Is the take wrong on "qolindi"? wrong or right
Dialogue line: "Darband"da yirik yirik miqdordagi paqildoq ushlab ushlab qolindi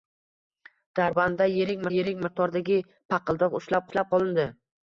right